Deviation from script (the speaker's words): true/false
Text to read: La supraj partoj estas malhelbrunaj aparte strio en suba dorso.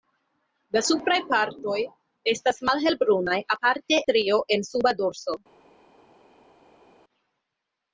false